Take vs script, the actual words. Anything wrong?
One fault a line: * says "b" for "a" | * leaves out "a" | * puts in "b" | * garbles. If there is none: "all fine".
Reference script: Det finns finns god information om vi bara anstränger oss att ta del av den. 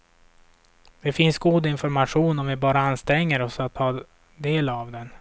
* leaves out "finns"